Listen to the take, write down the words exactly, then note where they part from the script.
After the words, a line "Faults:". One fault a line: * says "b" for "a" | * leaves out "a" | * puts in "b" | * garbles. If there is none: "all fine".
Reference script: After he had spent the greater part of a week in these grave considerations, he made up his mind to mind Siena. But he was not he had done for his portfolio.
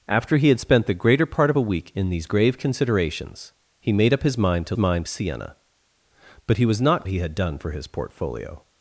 After he had spent the greater part of a week in these grave considerations, he made up his mind to mind Siena. But he was not he had done for his portfolio.
Faults:
all fine